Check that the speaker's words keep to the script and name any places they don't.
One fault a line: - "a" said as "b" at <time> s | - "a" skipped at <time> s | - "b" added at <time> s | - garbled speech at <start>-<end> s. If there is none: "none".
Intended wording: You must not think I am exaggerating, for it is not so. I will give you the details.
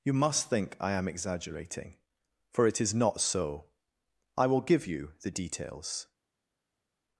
- "not" skipped at 0.5 s